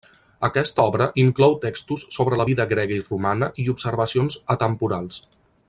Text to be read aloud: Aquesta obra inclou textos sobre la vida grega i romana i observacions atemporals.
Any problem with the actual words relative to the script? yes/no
no